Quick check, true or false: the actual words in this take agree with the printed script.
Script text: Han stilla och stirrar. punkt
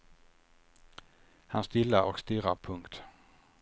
true